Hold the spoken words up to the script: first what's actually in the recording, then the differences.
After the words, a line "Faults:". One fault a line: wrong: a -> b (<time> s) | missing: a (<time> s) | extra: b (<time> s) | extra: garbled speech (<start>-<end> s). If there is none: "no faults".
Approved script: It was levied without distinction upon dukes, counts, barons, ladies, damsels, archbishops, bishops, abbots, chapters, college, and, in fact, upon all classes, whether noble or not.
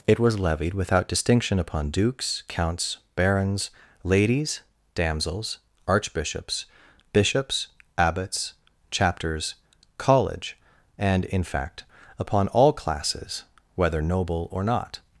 It was levied without distinction upon dukes, counts, barons, ladies, damsels, archbishops, bishops, abbots, chapters, college, and, in fact, upon all classes, whether noble or not.
Faults:
no faults